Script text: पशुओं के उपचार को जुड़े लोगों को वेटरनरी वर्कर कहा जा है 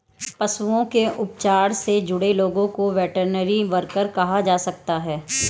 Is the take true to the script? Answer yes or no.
no